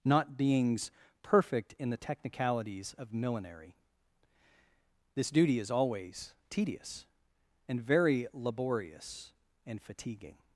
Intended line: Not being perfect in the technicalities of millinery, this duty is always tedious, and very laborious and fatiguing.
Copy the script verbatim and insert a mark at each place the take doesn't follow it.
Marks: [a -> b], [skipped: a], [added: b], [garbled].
Not [being -> beings] perfect in the technicalities of millinery, this duty is always tedious, and very laborious and fatiguing.